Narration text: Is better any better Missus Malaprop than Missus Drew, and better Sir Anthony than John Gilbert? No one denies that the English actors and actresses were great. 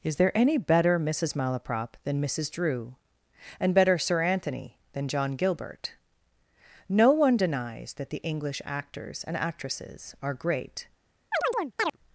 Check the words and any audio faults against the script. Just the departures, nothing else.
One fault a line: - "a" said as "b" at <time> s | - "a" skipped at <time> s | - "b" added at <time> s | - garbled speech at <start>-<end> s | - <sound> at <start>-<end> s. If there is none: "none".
- "better" said as "there" at 0.1 s
- "were" said as "are" at 10.2 s
- chirp at 11.3-12.0 s